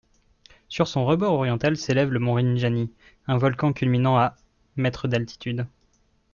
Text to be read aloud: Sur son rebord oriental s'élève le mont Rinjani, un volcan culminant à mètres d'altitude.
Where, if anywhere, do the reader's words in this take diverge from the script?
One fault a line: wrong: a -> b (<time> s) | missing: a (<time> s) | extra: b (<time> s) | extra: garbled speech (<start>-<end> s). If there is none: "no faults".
no faults